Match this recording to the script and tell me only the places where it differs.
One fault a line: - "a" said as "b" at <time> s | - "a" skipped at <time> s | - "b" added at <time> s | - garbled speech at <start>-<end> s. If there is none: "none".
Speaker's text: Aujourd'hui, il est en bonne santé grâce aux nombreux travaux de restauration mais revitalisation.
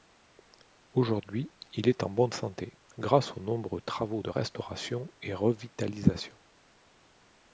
- "mais" said as "et" at 5.2 s